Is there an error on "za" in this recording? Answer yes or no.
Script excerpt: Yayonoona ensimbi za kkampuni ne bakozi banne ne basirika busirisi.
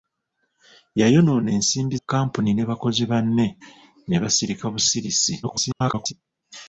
yes